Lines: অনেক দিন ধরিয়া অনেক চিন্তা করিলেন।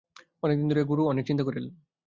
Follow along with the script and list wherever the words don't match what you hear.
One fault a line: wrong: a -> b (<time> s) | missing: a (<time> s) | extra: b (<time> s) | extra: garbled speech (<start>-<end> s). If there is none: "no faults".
extra: গুরু (0.9 s)